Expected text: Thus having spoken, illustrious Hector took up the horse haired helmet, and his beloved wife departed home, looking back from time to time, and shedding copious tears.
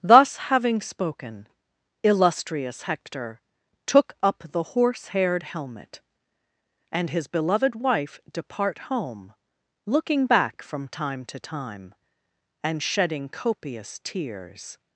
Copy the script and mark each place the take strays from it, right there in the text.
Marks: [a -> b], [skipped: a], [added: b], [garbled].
Thus having spoken, illustrious Hector took up the horse haired helmet, and his beloved wife [departed -> depart] home, looking back from time to time, and shedding copious tears.